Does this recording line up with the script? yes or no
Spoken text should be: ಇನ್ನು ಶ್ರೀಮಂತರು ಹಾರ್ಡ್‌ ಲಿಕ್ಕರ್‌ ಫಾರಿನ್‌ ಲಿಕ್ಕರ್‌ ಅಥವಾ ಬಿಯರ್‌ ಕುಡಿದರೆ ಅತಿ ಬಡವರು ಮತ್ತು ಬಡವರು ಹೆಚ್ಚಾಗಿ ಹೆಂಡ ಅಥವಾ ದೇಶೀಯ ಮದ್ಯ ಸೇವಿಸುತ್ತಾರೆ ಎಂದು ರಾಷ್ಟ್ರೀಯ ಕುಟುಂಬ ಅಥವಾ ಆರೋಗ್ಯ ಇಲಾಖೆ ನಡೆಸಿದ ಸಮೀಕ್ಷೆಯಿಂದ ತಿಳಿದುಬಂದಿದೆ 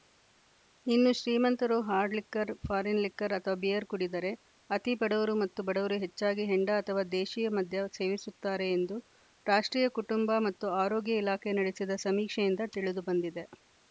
no